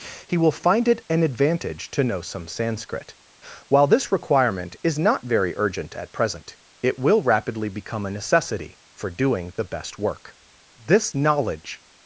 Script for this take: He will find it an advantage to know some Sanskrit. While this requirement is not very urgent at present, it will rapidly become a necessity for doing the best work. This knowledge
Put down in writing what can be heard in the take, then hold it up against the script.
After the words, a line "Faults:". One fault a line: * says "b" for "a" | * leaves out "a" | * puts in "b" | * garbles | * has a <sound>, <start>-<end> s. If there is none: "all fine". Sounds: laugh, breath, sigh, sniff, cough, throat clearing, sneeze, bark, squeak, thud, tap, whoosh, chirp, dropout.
He will find it an advantage to know some Sanskrit. While this requirement is not very urgent at present, it will rapidly become a necessity for doing the best work. This knowledge
Faults:
all fine